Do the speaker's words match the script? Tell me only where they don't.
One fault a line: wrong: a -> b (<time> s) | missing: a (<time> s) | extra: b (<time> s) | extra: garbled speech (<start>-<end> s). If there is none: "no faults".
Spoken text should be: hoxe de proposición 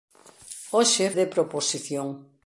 no faults